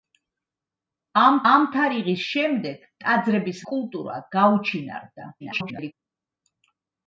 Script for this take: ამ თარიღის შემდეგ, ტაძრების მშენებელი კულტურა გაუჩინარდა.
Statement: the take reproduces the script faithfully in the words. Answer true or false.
false